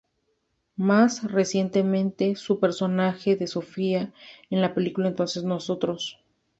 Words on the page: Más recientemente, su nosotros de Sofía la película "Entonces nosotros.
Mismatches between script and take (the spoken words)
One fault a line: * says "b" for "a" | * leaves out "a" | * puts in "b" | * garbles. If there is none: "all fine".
* says "personaje" for "nosotros"
* puts in "en"